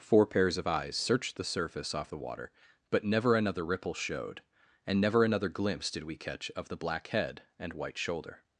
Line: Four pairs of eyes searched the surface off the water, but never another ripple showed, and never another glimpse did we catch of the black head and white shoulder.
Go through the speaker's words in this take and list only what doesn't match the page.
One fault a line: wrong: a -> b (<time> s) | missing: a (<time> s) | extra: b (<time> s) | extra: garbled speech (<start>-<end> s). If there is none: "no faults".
no faults